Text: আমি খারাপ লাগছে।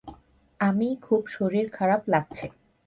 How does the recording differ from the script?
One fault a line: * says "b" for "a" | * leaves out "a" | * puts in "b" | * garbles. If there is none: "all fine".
* puts in "খুব শরীর"